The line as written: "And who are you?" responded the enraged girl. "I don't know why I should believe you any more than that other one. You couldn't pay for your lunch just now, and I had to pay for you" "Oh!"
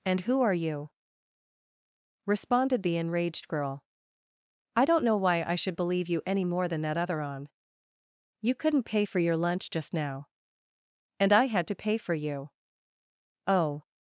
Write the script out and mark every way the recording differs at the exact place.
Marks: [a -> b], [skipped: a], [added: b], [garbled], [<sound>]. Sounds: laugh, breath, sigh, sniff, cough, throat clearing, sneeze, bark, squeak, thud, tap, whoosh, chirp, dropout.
"And who are you?" responded the enraged girl. "I don't know why I should believe you any more than that other [one. -> on] You couldn't pay for your lunch just now, and I had to pay for you" "Oh!"